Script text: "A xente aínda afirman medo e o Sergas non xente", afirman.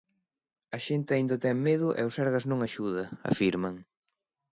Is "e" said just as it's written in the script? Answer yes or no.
yes